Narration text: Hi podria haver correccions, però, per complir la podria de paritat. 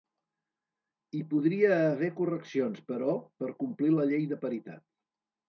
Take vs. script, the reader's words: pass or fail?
fail